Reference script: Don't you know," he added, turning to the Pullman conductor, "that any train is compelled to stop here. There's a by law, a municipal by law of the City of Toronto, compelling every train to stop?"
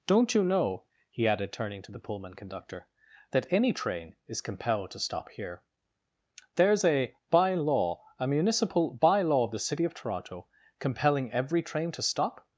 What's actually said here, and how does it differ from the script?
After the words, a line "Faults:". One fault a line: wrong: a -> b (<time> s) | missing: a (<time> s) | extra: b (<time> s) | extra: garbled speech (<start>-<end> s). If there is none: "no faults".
Don't you know," he added, turning to the Pullman conductor, "that any train is compelled to stop here. There's a by law, a municipal by law of the City of Toronto, compelling every train to stop?"
Faults:
no faults